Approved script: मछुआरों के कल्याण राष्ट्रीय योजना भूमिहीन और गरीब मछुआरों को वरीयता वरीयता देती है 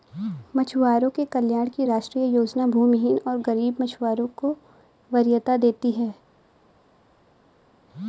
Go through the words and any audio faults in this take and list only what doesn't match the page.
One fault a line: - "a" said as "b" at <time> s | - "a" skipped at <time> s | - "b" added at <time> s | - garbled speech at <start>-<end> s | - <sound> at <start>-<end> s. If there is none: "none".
- "की" added at 1.7 s
- "वरीयता" skipped at 5.6 s